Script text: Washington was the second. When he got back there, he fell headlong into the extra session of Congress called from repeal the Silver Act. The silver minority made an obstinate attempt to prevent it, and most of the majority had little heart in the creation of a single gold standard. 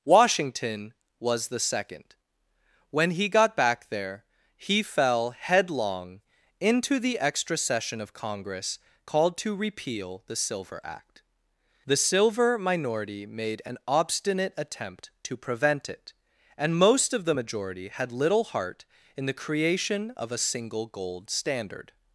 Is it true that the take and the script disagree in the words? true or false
true